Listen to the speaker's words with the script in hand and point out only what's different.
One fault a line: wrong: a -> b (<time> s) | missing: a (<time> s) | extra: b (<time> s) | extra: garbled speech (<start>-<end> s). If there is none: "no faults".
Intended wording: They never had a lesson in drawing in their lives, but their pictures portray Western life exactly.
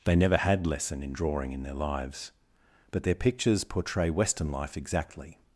missing: a (0.7 s)